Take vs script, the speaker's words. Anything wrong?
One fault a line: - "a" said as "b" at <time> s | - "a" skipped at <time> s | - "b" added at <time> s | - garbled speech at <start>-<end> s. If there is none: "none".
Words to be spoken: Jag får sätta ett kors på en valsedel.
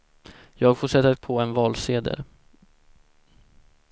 - "kors" skipped at 1.2 s